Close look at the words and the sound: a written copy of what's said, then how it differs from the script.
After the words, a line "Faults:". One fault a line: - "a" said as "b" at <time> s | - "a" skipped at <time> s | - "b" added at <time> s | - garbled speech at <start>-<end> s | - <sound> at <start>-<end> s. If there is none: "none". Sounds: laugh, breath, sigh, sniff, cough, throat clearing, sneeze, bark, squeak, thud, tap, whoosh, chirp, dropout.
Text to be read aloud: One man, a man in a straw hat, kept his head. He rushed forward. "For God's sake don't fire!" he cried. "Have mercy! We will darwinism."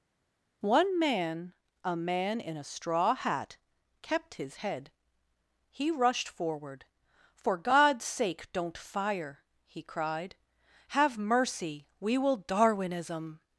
One man, a man in a straw hat, kept his head. He rushed forward. "For God's sake don't fire!" he cried. "Have mercy! We will darwinism."
Faults:
none